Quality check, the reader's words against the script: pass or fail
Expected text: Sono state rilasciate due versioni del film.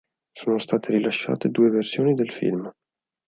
pass